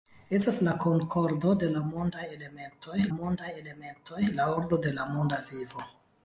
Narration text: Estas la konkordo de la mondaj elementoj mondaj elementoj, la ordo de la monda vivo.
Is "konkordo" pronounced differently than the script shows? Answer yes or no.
no